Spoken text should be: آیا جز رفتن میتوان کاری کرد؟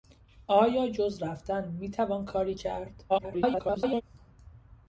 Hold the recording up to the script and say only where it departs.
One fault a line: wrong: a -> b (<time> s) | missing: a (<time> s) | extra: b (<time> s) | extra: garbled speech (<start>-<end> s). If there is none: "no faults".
extra: garbled speech (3.1-4.0 s)